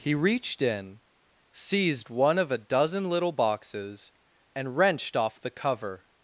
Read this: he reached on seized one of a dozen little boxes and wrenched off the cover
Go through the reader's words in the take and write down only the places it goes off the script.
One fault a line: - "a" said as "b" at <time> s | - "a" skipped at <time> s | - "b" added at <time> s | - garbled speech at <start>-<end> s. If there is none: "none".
- "on" said as "in" at 0.6 s